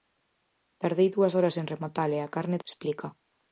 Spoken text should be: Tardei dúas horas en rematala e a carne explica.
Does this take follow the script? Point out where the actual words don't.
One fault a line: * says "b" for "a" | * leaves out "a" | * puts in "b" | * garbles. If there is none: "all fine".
all fine